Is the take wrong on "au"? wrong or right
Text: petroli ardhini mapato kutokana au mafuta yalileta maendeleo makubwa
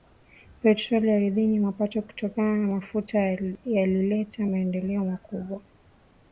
wrong